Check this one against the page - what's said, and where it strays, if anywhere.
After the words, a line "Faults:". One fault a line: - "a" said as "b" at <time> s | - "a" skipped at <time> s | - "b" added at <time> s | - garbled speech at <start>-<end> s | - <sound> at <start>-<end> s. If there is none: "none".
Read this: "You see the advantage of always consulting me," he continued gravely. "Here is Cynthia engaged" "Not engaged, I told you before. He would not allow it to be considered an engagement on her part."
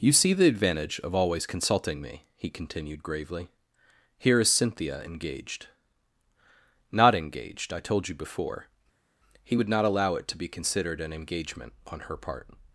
"You see the advantage of always consulting me," he continued gravely. "Here is Cynthia engaged" "Not engaged, I told you before. He would not allow it to be considered an engagement on her part."
Faults:
none